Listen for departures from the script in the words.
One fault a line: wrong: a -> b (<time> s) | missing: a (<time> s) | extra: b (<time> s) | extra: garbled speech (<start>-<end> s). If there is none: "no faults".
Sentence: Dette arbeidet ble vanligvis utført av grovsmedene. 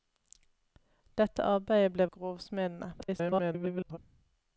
missing: vanligvis utført (2.1 s)
extra: garbled speech (3.0-4.0 s)